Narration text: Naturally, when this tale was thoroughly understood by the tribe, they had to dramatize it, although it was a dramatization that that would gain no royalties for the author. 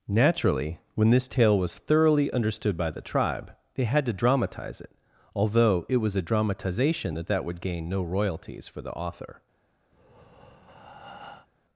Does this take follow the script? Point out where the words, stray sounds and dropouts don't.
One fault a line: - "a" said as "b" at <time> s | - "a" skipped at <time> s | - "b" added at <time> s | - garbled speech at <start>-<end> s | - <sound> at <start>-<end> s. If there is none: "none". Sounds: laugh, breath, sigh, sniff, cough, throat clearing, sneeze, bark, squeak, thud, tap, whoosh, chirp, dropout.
- breath at 9.9-11.5 s